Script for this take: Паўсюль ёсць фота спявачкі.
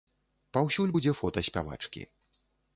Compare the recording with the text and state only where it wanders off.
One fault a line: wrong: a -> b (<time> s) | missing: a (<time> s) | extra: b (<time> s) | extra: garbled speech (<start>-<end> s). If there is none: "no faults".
wrong: ёсць -> будзе (1.0 s)